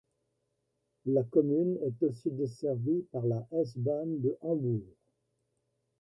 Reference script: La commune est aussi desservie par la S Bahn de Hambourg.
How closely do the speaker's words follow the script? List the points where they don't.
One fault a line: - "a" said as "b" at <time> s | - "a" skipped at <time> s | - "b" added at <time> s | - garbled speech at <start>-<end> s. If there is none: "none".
none